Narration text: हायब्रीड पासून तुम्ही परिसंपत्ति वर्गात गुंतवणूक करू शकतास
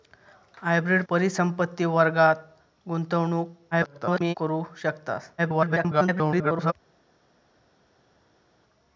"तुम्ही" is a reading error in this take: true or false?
true